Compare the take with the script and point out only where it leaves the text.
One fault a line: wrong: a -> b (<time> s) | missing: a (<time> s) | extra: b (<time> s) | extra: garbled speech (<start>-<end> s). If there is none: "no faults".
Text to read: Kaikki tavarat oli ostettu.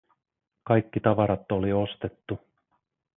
no faults